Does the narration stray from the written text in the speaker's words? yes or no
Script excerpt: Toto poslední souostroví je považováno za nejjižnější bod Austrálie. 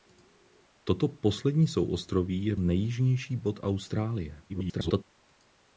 yes